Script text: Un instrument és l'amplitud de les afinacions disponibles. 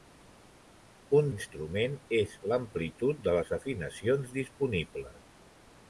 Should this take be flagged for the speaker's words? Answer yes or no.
no